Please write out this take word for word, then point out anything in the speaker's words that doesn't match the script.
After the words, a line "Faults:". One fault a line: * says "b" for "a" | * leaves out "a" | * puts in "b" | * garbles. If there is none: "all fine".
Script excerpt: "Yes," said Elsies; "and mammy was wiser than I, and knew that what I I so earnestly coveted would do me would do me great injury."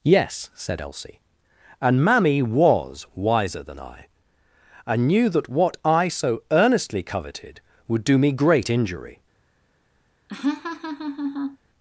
"Yes," said Elsie; "and mammy was wiser than I, and knew that what I so earnestly coveted would do me great injury."
Faults:
* says "Elsie" for "Elsies"
* leaves out "I"
* leaves out "would do me"